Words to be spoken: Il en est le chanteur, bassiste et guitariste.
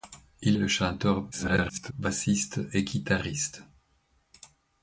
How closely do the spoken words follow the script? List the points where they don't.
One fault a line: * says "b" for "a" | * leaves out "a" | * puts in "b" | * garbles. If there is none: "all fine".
* leaves out "en est"
* garbles